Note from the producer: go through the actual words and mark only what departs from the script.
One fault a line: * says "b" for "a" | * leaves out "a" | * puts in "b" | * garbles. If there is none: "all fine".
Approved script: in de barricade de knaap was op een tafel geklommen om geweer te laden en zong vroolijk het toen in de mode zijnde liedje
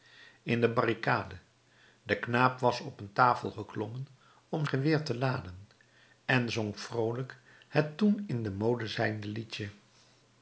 all fine